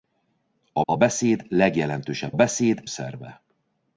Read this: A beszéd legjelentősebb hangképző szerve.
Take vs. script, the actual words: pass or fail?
fail